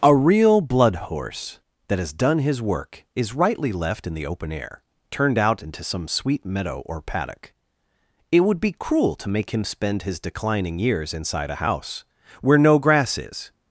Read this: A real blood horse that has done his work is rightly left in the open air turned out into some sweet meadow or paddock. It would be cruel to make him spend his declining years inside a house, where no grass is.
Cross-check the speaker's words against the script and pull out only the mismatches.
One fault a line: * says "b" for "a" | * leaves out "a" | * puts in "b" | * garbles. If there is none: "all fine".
all fine